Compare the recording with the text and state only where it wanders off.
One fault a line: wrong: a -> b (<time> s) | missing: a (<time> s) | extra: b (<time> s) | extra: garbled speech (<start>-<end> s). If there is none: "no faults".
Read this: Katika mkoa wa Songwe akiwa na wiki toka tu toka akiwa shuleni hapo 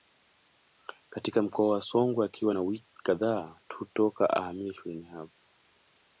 wrong: toka -> kadhaa (3.0 s)
wrong: akiwa -> ahamie (4.3 s)